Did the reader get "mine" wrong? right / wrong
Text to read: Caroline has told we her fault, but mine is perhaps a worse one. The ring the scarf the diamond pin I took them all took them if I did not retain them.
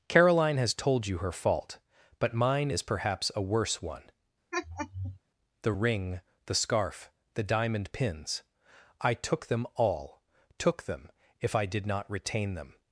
right